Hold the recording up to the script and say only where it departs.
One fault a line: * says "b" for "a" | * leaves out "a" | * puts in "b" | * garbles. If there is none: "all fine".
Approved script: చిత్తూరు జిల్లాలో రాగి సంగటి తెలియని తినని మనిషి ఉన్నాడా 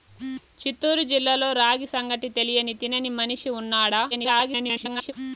* garbles